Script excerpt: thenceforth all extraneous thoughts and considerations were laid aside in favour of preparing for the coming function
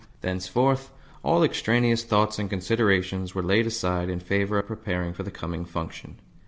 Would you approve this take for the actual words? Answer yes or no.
yes